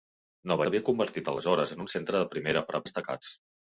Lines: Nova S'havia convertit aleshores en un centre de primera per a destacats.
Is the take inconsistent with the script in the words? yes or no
no